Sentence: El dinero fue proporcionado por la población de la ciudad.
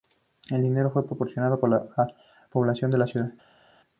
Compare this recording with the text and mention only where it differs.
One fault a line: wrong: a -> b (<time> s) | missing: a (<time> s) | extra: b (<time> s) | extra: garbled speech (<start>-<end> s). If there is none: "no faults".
no faults